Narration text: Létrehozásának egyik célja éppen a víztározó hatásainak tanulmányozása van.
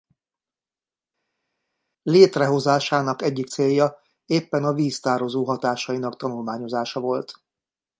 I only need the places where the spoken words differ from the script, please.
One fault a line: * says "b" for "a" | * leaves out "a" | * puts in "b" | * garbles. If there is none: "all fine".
* says "volt" for "van"